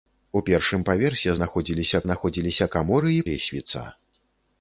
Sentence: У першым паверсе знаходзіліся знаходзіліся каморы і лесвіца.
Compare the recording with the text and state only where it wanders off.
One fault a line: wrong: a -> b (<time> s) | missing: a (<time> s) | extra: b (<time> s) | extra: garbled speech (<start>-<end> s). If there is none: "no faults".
no faults